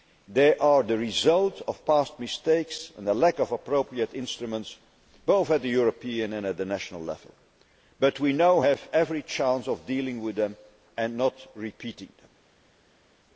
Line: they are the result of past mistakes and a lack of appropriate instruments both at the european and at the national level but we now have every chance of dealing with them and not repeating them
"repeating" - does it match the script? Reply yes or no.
yes